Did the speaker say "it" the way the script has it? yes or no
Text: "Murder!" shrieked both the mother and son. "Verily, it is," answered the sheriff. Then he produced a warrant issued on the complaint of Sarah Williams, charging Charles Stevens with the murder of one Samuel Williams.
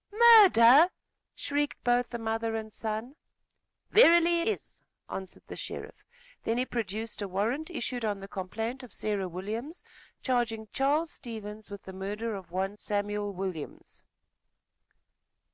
no